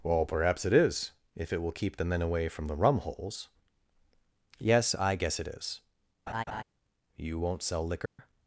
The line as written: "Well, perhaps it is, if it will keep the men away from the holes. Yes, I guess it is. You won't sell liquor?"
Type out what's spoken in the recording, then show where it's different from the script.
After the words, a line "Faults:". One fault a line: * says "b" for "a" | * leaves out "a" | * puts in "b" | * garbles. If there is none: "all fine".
"Well, perhaps it is, if it will keep the men away from the rum holes. Yes, I guess it is. You won't sell liquor?"
Faults:
* puts in "rum"